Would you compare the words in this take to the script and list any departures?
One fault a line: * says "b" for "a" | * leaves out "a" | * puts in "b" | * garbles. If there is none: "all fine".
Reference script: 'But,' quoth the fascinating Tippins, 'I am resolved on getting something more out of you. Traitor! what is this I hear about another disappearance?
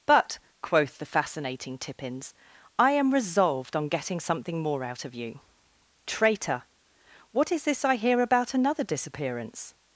all fine